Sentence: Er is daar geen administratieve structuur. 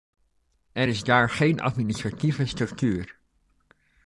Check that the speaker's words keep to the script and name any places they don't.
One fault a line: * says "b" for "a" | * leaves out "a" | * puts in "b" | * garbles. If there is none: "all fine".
all fine